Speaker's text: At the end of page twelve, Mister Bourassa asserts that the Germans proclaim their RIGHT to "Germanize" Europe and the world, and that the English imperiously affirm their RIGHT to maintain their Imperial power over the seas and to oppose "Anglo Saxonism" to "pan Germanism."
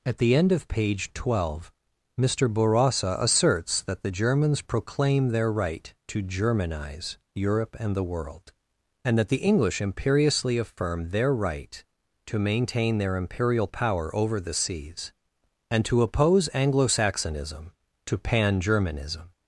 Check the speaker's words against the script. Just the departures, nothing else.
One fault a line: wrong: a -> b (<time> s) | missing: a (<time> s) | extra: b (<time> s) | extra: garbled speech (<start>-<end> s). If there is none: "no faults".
no faults